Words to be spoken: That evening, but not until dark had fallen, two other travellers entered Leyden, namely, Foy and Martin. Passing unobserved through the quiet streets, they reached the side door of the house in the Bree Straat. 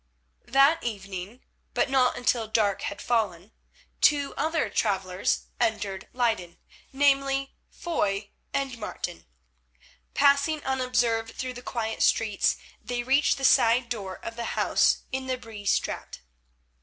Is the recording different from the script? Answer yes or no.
no